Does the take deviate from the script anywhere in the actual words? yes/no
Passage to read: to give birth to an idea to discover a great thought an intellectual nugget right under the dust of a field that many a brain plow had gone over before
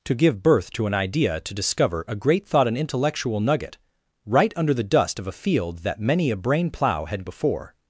yes